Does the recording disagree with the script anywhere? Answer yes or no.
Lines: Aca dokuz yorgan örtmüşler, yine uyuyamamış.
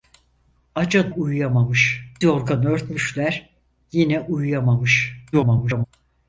yes